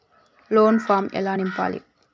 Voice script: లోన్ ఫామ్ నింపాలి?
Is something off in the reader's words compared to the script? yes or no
yes